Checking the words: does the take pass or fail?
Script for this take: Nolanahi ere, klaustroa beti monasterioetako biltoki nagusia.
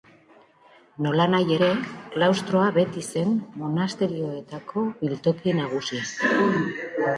fail